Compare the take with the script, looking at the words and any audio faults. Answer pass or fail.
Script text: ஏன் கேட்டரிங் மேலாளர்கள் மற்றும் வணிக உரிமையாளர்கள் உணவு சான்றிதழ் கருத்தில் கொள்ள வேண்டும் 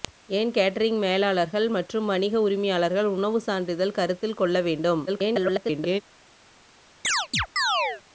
fail